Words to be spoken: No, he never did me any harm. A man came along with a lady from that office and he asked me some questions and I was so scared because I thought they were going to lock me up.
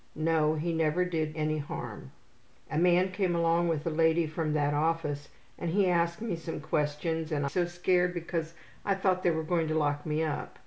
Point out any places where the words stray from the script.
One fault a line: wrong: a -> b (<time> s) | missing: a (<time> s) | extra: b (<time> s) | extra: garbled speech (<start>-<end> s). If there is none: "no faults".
missing: me (1.4 s)
missing: I was (7.5 s)